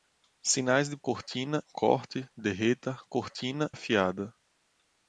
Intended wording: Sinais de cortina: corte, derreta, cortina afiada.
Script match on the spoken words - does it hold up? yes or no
yes